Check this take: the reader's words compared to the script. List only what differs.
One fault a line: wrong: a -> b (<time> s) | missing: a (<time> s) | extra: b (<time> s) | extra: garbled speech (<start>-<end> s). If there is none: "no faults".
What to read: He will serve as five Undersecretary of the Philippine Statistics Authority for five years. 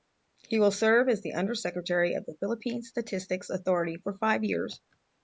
wrong: five -> the (1.2 s)